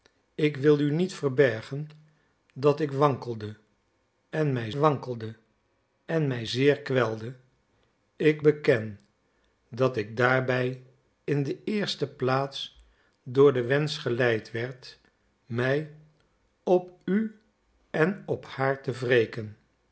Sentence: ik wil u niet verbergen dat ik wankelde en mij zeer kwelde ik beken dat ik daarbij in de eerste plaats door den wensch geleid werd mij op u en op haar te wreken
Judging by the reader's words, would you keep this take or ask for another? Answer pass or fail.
fail